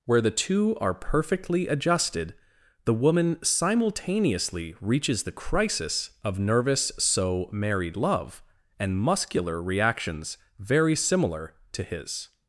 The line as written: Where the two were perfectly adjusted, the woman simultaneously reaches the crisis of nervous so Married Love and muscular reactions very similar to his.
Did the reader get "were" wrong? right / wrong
wrong